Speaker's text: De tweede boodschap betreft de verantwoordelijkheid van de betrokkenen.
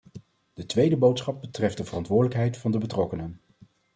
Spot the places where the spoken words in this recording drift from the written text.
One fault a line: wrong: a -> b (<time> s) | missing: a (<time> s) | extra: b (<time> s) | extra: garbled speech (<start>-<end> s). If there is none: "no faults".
no faults